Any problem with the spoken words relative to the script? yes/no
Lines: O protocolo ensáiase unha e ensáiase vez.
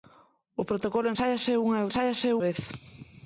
no